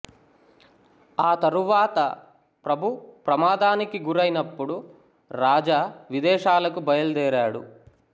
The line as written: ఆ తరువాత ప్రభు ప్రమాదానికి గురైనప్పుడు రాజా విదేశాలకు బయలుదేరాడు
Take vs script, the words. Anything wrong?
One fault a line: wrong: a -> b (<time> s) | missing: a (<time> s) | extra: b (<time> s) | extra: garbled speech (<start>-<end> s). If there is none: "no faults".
no faults